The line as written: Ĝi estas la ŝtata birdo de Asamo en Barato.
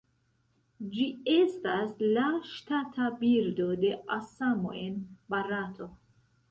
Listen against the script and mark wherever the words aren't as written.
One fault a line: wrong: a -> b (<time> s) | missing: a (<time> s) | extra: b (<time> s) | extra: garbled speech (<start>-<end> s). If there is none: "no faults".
no faults